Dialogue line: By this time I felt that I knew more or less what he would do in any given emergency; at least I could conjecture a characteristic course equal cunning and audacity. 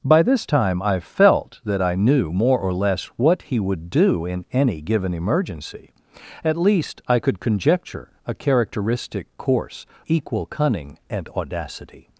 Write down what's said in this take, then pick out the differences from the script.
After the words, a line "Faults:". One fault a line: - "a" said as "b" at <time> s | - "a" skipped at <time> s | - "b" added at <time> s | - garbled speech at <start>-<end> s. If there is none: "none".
By this time I felt that I knew more or less what he would do in any given emergency; at least I could conjecture a characteristic course equal cunning and audacity.
Faults:
none